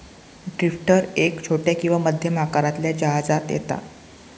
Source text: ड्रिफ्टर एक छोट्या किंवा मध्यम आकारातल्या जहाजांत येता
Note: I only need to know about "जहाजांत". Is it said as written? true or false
true